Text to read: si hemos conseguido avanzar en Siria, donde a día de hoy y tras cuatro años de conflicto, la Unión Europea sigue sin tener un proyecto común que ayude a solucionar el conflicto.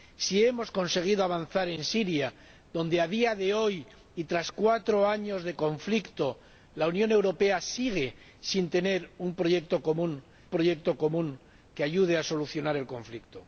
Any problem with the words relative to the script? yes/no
yes